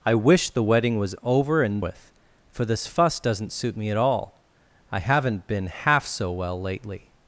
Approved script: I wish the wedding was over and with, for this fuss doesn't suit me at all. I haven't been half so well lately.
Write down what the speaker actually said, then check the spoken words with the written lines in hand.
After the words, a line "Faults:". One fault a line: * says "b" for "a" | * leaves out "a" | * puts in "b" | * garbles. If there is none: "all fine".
I wish the wedding was over and with, for this fuss doesn't suit me at all. I haven't been half so well lately.
Faults:
all fine